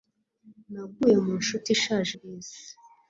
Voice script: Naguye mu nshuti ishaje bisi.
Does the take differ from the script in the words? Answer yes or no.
no